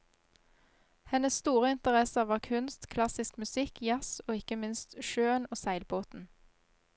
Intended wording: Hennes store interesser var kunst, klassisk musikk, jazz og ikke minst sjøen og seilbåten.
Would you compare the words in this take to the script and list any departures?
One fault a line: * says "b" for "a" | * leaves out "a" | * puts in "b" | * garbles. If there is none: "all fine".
all fine